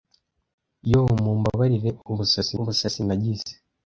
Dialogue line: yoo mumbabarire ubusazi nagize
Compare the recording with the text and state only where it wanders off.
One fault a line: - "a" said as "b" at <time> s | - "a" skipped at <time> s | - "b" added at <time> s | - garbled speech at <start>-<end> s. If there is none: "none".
- "ubusazi" added at 2.6 s